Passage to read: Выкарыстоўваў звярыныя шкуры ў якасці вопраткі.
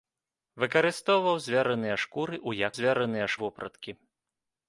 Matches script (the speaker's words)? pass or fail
fail